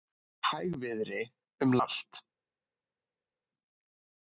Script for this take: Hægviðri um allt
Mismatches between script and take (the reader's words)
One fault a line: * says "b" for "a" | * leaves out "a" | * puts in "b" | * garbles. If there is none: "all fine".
all fine